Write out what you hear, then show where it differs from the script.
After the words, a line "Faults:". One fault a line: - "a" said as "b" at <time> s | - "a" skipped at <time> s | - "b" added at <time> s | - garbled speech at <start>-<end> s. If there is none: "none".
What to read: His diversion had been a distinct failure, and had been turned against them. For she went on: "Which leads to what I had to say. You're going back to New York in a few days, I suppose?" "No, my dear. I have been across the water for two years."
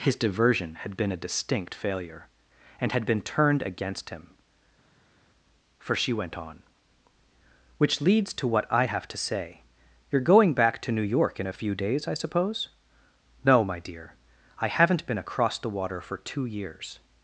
His diversion had been a distinct failure, and had been turned against him. For she went on: "Which leads to what I have to say. You're going back to New York in a few days, I suppose?" "No, my dear. I haven't been across the water for two years."
Faults:
- "them" said as "him" at 4.1 s
- "had" said as "have" at 8.9 s
- "have" said as "haven't" at 14.7 s